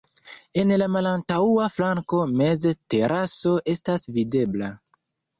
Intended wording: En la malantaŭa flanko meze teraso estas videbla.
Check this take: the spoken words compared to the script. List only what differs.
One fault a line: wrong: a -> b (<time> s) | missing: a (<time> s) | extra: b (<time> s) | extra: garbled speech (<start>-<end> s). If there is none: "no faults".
no faults